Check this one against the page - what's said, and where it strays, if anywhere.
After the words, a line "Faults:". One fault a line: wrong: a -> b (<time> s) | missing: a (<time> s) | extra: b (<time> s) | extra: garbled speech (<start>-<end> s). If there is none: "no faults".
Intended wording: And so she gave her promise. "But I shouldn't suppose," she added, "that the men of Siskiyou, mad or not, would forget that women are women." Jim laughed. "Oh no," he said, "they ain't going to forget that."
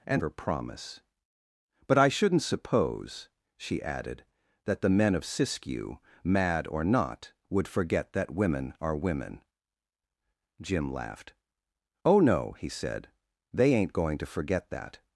And her promise. "But I shouldn't suppose," she added, "that the men of Siskiyou, mad or not, would forget that women are women." Jim laughed. "Oh no," he said, "they ain't going to forget that."
Faults:
missing: so she gave (0.2 s)